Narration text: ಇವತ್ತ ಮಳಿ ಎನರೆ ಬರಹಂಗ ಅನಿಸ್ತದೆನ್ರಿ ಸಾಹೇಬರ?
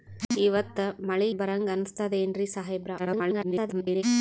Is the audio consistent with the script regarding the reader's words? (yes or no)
no